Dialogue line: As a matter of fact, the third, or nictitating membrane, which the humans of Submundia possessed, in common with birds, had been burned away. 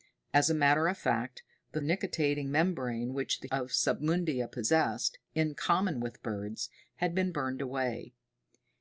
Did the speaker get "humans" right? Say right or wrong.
wrong